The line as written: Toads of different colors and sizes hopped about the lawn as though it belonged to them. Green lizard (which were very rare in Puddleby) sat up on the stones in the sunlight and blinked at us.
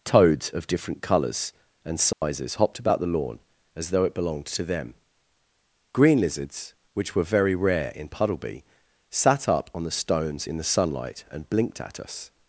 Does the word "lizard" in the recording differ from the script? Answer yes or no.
yes